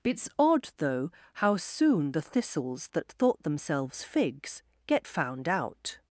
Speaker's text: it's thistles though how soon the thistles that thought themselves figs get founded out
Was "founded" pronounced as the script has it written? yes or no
no